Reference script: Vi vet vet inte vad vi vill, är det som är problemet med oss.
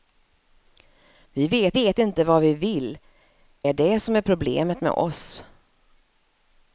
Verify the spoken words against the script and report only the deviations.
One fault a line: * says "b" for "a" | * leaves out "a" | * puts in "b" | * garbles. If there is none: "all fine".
all fine